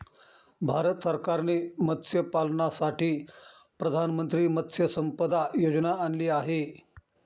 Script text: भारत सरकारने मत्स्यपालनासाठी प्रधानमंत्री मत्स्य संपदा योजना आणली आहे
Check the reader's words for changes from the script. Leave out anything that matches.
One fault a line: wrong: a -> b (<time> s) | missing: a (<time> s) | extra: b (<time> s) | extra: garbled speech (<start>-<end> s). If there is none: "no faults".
no faults